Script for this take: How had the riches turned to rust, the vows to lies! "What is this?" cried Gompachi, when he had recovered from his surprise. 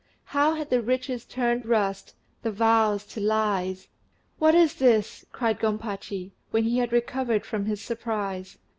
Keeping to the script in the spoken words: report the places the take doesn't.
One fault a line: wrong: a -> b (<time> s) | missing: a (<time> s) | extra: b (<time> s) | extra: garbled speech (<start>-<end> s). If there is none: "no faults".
missing: to (1.6 s)